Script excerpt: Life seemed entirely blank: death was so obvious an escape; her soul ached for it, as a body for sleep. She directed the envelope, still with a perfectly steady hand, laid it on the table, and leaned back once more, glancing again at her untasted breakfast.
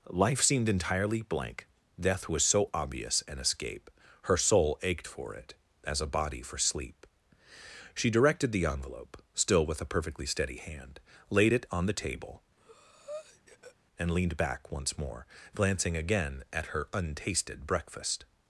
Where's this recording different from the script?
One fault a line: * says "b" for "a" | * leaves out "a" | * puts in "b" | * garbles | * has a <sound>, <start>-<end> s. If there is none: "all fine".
* has a breath, 12.6-13.8 s